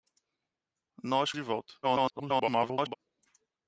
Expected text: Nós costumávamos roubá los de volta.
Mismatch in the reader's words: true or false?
true